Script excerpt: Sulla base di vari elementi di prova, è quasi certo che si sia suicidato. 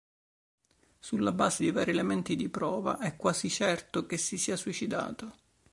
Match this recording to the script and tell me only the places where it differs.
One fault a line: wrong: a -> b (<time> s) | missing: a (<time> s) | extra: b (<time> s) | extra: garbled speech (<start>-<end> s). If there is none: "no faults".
no faults